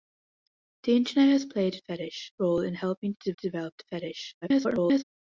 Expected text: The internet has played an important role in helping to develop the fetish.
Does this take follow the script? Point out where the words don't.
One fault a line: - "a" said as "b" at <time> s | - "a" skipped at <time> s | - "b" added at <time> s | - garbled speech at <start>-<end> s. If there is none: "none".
- "important" said as "fetish" at 1.9 s
- "to" added at 3.3 s
- garbled speech at 4.4-5.0 s